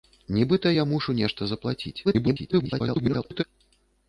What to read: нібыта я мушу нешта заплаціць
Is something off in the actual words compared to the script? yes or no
yes